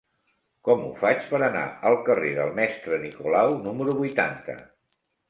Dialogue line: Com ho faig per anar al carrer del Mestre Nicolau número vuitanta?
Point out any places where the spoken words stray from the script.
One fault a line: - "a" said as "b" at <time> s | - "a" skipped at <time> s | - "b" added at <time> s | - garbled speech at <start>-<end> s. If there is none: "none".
none